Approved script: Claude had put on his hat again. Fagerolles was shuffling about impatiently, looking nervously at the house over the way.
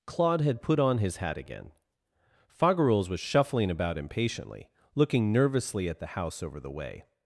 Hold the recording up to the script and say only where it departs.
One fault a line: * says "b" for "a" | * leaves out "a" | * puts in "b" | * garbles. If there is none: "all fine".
all fine